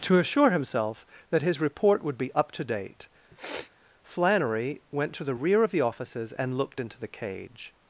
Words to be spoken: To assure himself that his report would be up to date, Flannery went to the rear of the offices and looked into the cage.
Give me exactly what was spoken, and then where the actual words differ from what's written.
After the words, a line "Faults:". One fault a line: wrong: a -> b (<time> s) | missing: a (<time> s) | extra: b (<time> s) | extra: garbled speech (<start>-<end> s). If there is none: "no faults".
To assure himself that his report would be up to date, Flannery went to the rear of the offices and looked into the cage.
Faults:
no faults